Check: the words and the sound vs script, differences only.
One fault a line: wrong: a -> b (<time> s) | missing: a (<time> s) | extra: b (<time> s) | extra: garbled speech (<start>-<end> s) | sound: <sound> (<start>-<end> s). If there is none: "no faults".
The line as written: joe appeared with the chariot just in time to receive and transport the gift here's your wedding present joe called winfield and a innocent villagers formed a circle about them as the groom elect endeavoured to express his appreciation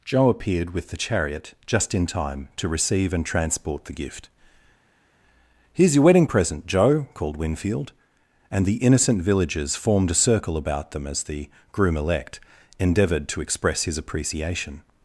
wrong: a -> the (8.6 s)